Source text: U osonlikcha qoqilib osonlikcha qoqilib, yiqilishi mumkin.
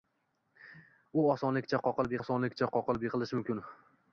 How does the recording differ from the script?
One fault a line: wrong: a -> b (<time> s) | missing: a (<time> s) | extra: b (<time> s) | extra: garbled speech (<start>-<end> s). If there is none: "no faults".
no faults